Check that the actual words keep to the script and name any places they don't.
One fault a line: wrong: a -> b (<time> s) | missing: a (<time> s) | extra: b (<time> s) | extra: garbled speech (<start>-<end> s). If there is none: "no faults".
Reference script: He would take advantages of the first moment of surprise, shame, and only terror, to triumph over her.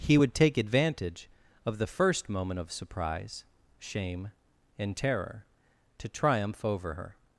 wrong: advantages -> advantage (0.6 s)
missing: only (5.0 s)